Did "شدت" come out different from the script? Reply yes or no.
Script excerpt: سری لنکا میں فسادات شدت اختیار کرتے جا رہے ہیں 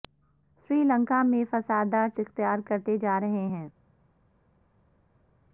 yes